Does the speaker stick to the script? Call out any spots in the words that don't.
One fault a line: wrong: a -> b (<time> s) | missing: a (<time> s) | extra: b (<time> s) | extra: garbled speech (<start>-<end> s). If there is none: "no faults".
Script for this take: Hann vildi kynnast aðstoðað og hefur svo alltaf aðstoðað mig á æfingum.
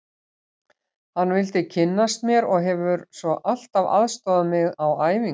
wrong: aðstoðað -> mér (2.3 s)